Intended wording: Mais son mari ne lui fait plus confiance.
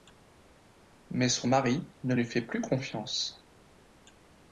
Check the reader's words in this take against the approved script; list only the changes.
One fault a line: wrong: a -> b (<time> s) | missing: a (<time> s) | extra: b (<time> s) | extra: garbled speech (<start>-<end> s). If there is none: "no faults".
no faults